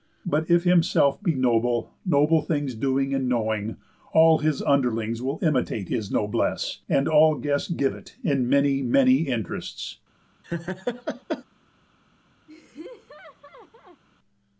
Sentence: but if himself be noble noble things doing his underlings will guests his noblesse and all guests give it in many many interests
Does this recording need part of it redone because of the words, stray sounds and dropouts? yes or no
yes